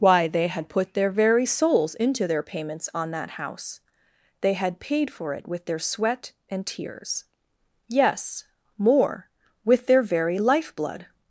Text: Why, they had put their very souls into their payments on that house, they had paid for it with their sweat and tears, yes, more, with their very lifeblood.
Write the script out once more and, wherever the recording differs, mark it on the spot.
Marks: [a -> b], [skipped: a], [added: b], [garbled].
Why, they had put their very souls into their payments on that house, they had paid for it with their sweat and tears, yes, more, with their very lifeblood.